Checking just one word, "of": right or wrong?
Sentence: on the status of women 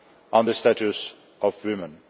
right